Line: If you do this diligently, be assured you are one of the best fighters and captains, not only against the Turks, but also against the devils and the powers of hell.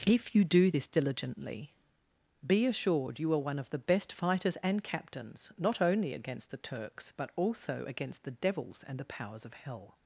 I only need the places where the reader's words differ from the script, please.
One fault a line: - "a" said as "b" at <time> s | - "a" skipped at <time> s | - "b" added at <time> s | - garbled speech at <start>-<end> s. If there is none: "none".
none